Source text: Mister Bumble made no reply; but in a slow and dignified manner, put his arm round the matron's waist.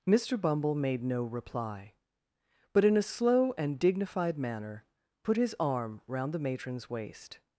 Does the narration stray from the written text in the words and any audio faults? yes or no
no